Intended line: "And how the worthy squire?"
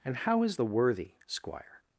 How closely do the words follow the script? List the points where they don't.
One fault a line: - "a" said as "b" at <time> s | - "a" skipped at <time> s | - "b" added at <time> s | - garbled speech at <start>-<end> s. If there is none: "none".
- "is" added at 0.4 s